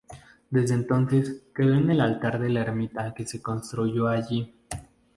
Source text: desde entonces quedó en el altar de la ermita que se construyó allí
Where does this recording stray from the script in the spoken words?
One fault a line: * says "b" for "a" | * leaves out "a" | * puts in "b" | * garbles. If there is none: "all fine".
all fine